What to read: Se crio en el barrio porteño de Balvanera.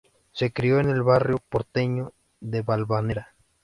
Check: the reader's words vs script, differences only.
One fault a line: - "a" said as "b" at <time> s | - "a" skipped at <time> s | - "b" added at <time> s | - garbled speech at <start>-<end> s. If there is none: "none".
none